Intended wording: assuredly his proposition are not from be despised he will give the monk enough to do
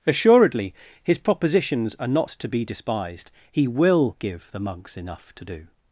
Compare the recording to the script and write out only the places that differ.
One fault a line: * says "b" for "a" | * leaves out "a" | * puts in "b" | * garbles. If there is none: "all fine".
* says "propositions" for "proposition"
* says "to" for "from"
* says "monks" for "monk"